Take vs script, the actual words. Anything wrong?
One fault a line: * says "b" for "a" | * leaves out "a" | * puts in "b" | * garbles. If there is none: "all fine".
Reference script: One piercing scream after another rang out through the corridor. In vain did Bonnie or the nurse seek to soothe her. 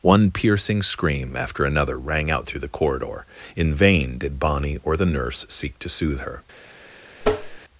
all fine